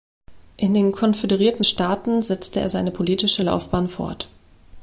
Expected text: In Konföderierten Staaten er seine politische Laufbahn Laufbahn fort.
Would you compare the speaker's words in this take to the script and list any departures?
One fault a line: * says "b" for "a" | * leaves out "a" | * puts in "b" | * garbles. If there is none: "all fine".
* puts in "den"
* puts in "setzte"
* leaves out "Laufbahn"